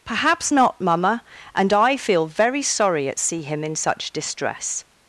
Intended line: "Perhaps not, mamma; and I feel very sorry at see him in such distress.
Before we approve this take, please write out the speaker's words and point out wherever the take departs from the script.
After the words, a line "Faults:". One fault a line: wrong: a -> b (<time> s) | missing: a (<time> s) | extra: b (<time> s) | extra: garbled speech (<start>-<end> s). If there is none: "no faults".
"Perhaps not, mamma; and I feel very sorry at see him in such distress.
Faults:
no faults